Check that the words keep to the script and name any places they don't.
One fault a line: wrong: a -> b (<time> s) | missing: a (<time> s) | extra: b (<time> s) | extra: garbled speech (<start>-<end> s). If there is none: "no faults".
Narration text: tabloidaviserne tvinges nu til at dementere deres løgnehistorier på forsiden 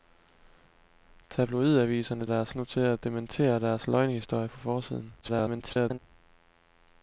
wrong: tvinges -> deres (2.3 s)
extra: garbled speech (5.2-6.0 s)